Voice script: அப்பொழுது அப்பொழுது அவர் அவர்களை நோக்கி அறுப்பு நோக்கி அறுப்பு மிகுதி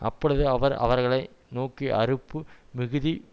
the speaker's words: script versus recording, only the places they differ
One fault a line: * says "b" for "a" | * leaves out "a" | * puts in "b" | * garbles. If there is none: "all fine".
* leaves out "அப்பொழுது"
* leaves out "நோக்கி அறுப்பு"